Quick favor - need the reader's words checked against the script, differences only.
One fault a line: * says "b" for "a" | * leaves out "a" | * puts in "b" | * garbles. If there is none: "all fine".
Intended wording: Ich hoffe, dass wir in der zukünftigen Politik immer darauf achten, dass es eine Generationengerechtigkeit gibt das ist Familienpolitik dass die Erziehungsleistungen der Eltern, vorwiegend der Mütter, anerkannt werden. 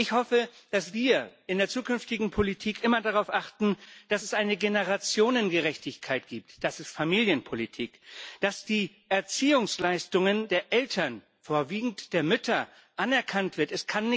all fine